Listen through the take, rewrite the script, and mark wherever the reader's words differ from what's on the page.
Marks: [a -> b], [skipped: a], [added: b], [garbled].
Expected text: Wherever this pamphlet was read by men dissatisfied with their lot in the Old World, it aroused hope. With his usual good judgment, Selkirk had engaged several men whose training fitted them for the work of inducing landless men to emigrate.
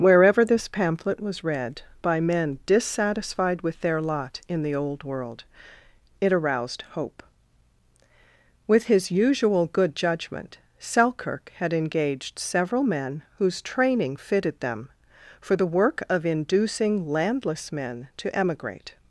Wherever this pamphlet was read by men dissatisfied with their lot in the Old World, it aroused hope. With his usual good judgment, Selkirk had engaged several men whose training fitted them for the work of inducing landless men to emigrate.